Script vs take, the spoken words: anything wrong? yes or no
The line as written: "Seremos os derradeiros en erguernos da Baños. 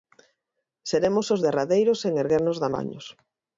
no